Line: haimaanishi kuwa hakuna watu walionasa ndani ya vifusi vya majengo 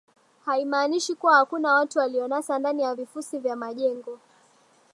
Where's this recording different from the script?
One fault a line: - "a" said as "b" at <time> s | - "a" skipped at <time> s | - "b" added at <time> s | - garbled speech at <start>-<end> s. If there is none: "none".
none